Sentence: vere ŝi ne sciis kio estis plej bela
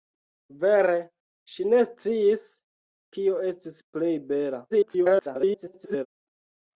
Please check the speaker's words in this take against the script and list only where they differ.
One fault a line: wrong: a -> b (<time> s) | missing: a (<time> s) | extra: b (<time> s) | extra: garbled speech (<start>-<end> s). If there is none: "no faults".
extra: garbled speech (4.7-6.1 s)